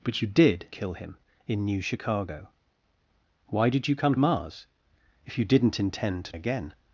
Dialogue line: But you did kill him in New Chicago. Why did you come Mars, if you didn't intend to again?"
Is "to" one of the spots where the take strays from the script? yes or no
no